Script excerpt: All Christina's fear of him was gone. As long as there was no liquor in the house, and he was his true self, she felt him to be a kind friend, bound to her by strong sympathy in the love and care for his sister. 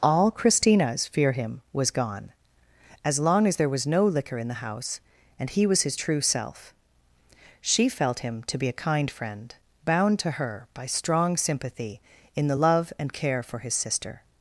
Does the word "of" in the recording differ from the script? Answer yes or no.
yes